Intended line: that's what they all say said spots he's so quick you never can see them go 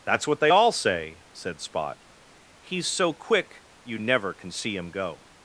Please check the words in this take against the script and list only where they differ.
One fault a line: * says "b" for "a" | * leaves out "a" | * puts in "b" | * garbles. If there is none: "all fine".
* says "spot" for "spots"
* says "him" for "them"